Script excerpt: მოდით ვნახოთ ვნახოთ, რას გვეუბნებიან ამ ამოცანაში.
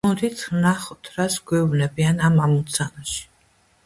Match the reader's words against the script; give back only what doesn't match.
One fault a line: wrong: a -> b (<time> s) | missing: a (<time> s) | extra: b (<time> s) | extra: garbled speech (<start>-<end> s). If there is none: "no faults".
missing: ვნახოთ (1.1 s)